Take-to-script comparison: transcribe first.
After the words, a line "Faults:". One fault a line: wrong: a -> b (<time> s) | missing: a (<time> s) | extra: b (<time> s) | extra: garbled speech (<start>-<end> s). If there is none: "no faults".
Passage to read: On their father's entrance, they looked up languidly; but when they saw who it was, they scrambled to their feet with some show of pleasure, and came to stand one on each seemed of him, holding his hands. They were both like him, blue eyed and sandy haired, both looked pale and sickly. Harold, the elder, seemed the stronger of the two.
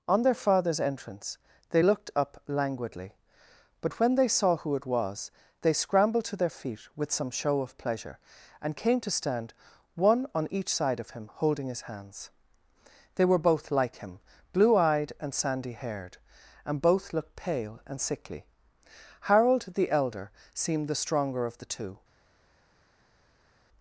On their father's entrance, they looked up languidly; but when they saw who it was, they scrambled to their feet with some show of pleasure, and came to stand one on each side of him, holding his hands. They were both like him, blue eyed and sandy haired, and both looked pale and sickly. Harold, the elder, seemed the stronger of the two.
Faults:
wrong: seemed -> side (10.7 s)
extra: and (16.6 s)